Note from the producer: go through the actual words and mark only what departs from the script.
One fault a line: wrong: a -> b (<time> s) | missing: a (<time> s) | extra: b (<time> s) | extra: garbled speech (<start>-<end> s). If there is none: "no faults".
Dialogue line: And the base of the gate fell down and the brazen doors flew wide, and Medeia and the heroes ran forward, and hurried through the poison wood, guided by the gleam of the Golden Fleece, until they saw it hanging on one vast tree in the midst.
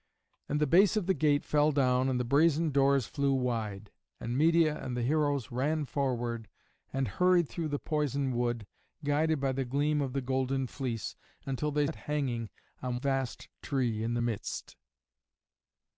missing: saw (11.8 s)
missing: one (13.0 s)